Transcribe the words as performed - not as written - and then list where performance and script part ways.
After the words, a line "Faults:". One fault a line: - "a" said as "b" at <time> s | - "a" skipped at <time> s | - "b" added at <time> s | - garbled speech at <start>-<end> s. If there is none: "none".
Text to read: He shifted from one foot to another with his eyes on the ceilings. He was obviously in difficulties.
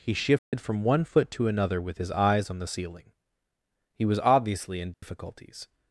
He shifted from one foot to another with his eyes on the ceiling. He was obviously in difficulties.
Faults:
- "ceilings" said as "ceiling" at 2.7 s